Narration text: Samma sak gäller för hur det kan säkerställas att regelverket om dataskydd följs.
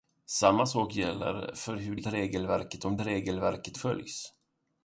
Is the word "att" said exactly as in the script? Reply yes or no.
no